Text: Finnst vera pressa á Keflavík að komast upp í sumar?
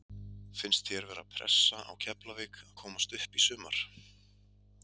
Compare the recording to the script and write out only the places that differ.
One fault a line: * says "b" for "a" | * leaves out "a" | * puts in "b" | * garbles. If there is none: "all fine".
* puts in "þér"